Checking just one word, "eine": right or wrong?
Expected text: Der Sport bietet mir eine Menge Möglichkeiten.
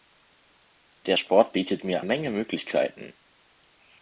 wrong